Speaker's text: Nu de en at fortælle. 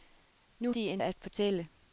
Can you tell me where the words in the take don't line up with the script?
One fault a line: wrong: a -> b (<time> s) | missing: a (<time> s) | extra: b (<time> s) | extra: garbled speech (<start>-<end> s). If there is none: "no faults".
no faults